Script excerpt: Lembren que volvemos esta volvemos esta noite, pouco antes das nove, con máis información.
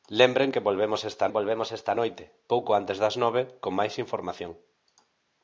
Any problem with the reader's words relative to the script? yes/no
no